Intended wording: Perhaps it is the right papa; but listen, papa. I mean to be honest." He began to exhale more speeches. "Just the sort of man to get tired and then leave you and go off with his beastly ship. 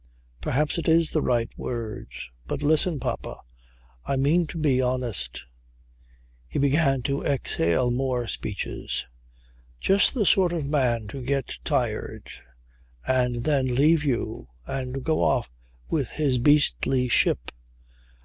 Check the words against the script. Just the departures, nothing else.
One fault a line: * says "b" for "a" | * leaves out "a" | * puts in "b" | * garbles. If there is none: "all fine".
* says "word" for "papa"